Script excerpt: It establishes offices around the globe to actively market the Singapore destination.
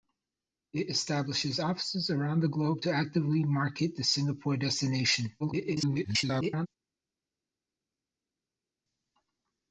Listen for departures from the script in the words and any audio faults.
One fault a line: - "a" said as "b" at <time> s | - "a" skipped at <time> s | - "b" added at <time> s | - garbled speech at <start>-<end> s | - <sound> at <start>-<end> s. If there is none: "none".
- garbled speech at 5.4-6.7 s